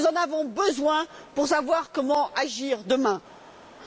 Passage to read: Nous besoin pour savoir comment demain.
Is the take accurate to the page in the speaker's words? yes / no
no